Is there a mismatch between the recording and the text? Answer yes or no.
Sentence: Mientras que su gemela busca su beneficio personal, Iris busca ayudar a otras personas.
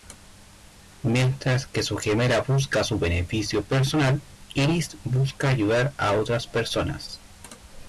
no